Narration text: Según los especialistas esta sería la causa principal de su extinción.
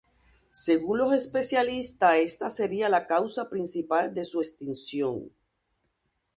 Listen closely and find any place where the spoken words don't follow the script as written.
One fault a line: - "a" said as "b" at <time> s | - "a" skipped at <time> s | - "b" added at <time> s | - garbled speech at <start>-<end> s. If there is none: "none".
none